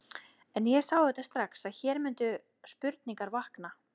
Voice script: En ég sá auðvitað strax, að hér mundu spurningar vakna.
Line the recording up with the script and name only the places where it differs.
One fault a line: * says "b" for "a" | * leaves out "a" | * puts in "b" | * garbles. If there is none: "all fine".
all fine